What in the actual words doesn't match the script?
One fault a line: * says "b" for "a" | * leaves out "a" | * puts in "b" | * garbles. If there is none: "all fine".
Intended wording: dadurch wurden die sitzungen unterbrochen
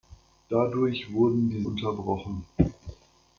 * leaves out "sitzungen"